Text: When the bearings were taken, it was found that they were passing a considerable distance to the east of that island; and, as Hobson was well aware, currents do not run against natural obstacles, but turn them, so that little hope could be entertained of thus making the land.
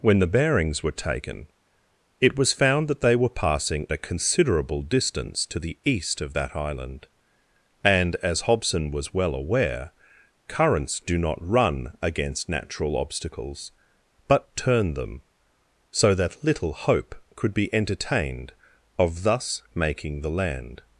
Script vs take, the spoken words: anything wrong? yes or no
no